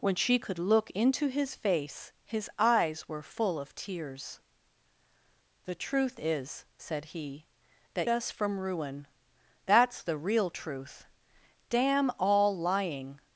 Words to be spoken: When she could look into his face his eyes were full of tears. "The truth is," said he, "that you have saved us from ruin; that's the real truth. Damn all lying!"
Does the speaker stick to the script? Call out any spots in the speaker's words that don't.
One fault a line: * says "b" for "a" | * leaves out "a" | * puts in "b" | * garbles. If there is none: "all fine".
* leaves out "you have saved"